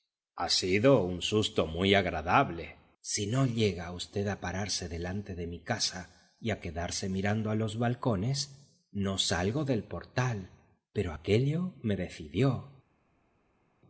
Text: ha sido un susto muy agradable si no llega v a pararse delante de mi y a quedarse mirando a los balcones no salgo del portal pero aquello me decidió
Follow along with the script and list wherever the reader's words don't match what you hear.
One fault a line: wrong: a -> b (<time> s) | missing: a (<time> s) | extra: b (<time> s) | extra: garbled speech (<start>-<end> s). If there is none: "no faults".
extra: casa (5.6 s)